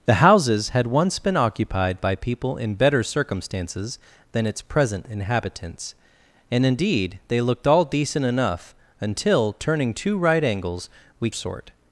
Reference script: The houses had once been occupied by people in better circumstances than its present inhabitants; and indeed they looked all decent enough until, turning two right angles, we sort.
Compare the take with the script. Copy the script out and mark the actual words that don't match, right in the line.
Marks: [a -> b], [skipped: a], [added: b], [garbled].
The houses had once been occupied by people in better circumstances than its present inhabitants; and indeed they looked all decent enough until, turning two right angles, we sort.